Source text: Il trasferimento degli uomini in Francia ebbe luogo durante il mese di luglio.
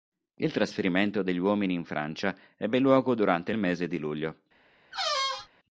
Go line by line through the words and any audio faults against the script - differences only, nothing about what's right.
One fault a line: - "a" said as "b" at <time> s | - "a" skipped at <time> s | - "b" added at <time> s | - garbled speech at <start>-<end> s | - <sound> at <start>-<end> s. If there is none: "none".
- squeak at 4.9-5.5 s